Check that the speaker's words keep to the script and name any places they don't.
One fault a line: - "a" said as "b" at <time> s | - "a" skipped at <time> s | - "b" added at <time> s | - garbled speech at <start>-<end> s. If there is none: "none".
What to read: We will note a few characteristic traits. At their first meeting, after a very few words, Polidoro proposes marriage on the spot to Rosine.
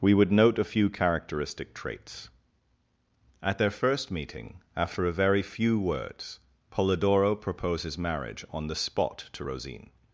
- "will" said as "would" at 0.1 s